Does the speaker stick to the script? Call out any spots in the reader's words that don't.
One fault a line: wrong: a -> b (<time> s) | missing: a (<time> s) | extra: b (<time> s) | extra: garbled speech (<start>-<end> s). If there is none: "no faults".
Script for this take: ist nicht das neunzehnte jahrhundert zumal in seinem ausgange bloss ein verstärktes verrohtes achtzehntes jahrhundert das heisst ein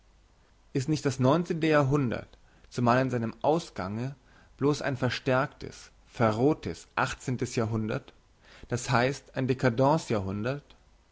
no faults